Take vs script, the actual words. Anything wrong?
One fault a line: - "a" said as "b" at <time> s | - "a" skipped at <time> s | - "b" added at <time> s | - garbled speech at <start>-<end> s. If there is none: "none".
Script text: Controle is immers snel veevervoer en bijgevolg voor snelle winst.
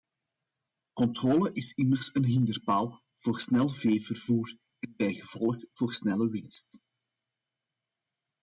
- "een hinderpaal voor" added at 2.1 s